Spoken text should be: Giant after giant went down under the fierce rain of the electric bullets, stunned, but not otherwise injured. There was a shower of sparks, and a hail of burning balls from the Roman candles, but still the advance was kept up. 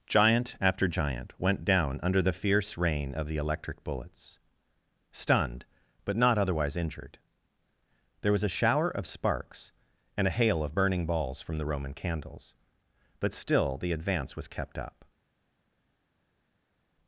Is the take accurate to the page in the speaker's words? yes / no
yes